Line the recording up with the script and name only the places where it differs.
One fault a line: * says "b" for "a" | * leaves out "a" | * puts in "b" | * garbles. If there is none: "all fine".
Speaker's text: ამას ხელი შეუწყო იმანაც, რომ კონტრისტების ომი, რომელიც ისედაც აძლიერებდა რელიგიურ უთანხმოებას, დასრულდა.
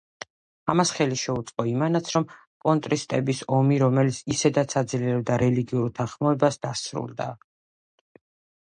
all fine